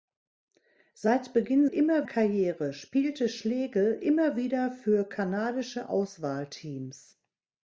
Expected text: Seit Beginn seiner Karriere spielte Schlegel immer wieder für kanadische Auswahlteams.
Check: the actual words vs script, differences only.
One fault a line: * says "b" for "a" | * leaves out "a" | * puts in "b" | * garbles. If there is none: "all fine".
* says "immer" for "seiner"